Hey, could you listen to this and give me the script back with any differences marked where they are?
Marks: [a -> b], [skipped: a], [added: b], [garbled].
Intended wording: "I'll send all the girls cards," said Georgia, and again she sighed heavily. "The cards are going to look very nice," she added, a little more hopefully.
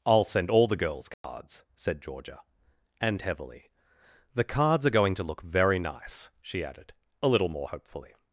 "I'll send all the girls cards," said Georgia, and [skipped: again she sighed] heavily. "The cards are going to look very nice," she added, a little more hopefully.